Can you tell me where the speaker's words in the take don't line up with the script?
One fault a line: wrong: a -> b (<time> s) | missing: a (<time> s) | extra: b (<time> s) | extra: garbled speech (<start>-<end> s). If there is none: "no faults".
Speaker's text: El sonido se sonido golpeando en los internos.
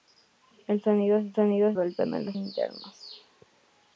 no faults